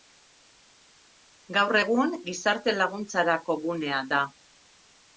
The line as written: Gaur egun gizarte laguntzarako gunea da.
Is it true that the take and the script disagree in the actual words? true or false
false